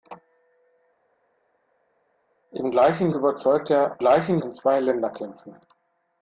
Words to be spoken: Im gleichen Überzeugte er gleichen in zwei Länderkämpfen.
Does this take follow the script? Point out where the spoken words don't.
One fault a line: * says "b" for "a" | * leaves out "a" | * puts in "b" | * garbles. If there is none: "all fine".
all fine